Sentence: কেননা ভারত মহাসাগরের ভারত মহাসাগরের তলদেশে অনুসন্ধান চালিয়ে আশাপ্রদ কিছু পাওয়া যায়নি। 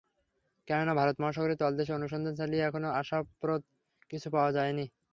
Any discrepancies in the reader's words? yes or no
yes